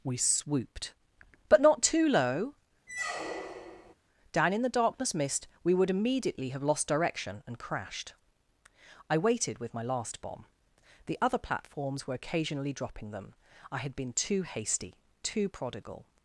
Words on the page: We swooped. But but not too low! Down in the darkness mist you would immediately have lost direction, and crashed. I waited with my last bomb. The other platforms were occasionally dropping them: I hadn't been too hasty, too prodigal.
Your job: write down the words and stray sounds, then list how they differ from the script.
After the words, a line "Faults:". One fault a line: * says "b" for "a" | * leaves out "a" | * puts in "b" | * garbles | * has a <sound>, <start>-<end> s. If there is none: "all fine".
We swooped. But not too low! Down in the darkness mist we would immediately have lost direction, and crashed. I waited with my last bomb. The other platforms were occasionally dropping them: I had been too hasty, too prodigal.
Faults:
* leaves out "but"
* has a squeak, 2.9-3.9 s
* says "we" for "you"
* says "had" for "hadn't"